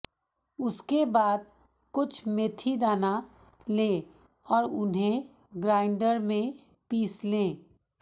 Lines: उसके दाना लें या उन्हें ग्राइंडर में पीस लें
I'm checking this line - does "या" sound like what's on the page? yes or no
no